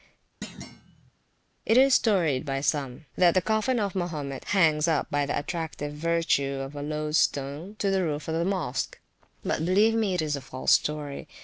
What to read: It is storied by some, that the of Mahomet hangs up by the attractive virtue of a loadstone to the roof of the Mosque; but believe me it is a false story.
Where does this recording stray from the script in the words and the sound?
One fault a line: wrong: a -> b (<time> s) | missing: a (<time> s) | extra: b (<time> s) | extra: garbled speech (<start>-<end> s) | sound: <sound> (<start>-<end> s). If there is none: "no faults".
sound: thud (0.4-1.1 s)
extra: coffin (3.4 s)